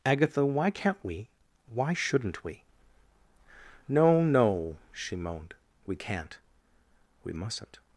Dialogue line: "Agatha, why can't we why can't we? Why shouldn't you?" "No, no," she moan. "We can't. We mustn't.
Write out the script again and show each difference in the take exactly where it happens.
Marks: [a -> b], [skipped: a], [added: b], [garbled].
"Agatha, why can't we why [can't -> shouldn't] we? [skipped: Why shouldn't you?"] "No, no," she [moan. -> moaned] "We can't. We mustn't.